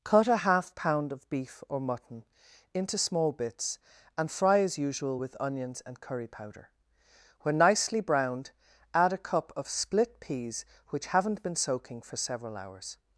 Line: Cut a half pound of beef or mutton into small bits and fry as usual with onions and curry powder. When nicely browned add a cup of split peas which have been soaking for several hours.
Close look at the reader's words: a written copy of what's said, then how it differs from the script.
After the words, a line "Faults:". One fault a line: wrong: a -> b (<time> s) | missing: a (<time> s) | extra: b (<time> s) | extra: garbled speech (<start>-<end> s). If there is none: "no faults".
Cut a half pound of beef or mutton into small bits and fry as usual with onions and curry powder. When nicely browned add a cup of split peas which haven't been soaking for several hours.
Faults:
wrong: have -> haven't (11.1 s)